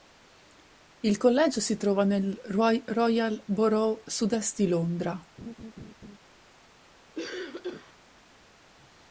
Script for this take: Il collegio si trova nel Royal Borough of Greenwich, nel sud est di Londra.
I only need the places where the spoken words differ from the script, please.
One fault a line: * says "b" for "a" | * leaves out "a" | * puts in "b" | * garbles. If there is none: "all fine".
* leaves out "of Greenwich nel"